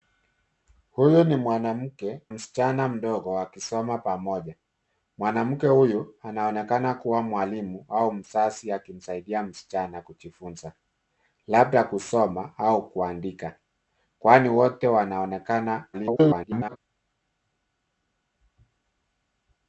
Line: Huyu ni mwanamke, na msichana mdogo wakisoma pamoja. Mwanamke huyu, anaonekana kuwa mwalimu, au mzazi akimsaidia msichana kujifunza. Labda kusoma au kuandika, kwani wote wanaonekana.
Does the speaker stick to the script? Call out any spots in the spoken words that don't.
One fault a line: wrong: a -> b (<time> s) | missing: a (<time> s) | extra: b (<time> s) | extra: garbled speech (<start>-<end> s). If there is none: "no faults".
missing: na (2.2 s)
extra: garbled speech (15.9-16.8 s)